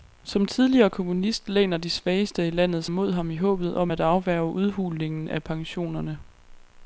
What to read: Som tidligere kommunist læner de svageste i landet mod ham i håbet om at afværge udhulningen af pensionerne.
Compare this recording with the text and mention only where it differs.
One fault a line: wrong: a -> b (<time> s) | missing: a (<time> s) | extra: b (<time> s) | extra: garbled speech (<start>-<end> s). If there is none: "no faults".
no faults